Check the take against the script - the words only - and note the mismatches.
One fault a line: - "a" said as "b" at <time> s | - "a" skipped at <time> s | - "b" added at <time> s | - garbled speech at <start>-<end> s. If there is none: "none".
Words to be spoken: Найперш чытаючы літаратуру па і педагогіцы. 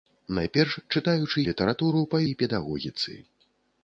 none